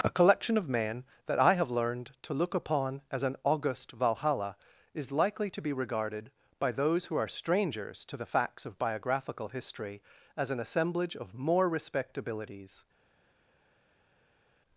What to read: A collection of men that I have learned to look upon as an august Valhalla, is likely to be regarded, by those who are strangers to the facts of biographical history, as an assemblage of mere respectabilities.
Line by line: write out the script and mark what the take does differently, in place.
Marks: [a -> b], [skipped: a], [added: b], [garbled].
A collection of men that I have learned to look upon as an august Valhalla, is likely to be regarded, by those who are strangers to the facts of biographical history, as an assemblage of [mere -> more] respectabilities.